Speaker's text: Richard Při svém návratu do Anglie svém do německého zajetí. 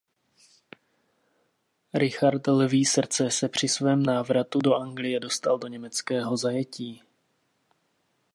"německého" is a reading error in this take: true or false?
false